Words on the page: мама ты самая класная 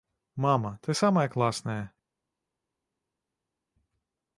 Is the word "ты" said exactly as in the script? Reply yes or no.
yes